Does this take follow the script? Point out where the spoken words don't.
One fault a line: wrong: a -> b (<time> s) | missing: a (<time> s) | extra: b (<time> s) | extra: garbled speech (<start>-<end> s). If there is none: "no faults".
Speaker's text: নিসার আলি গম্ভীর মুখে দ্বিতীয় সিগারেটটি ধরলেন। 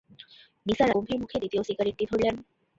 missing: আলি (0.9 s)